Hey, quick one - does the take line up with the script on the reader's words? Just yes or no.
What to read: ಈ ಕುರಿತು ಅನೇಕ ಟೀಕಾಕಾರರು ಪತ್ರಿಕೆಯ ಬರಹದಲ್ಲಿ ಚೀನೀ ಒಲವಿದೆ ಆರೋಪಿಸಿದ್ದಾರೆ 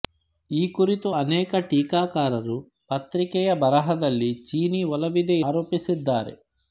yes